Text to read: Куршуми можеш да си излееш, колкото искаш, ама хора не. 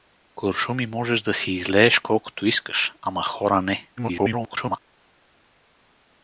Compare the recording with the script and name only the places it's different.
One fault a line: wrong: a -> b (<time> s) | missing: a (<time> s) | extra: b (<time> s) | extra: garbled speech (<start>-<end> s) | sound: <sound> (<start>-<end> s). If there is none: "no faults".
extra: garbled speech (4.0-4.8 s)